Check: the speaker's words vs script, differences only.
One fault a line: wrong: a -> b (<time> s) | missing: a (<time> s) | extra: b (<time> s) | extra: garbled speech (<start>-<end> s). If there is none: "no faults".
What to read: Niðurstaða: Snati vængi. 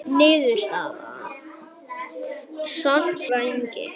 no faults